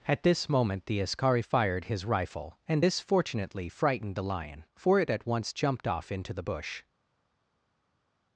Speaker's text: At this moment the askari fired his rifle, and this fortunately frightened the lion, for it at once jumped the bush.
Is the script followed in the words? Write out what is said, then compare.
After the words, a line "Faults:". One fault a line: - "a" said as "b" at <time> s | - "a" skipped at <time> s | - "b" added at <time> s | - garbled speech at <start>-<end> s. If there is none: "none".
At this moment the askari fired his rifle, and this fortunately frightened the lion, for it at once jumped off into the bush.
Faults:
- "off into" added at 5.9 s